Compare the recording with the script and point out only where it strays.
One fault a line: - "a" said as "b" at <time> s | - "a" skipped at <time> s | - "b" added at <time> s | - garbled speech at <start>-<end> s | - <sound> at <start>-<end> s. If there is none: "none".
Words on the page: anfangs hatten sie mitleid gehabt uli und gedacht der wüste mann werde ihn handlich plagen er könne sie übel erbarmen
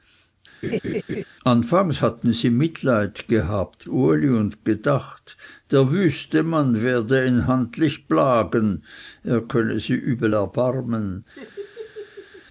- laugh at 0.6-1.2 s
- laugh at 11.4-12.5 s